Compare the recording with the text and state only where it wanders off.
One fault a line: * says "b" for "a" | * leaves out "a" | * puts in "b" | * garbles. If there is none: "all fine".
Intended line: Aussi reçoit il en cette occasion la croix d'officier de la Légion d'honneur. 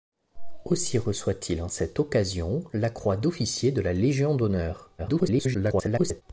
* garbles